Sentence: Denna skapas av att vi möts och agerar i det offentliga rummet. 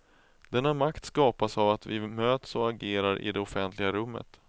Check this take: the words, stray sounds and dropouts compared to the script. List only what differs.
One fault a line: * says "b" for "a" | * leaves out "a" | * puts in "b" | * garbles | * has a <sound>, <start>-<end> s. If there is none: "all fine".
* puts in "makt"